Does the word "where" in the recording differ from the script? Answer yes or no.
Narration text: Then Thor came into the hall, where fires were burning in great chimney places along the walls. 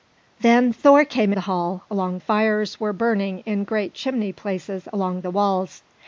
yes